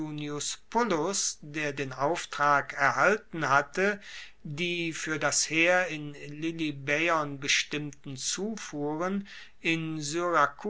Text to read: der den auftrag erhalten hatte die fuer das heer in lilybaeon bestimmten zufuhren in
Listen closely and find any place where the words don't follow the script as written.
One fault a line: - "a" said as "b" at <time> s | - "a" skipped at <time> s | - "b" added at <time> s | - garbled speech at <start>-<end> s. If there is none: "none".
none